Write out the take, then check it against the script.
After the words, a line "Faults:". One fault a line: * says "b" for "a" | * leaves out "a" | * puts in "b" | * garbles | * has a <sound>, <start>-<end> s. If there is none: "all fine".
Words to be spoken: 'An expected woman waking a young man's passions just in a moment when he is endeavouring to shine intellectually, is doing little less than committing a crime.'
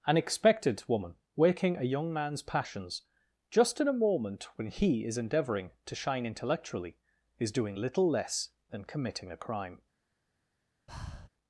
'An expected woman waking a young man's passions just in a moment when he is endeavouring to shine intellectually, is doing little less than committing a crime.'
Faults:
* has a breath, 10.9-11.3 s